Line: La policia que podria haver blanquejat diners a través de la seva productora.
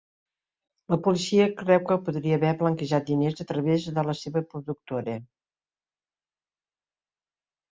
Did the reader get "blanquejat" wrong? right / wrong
right